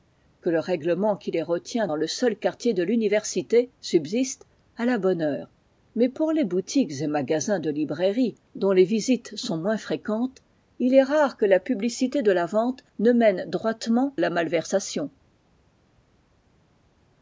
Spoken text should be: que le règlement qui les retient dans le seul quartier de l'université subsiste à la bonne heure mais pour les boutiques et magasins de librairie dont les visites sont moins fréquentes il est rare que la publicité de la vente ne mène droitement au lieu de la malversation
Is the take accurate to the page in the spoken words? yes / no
no